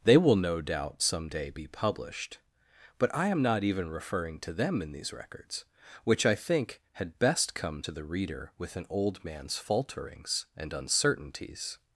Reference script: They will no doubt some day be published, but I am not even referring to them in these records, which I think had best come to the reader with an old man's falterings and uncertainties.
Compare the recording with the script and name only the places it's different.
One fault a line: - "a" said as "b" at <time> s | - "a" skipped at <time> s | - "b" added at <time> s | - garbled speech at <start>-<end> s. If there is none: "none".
none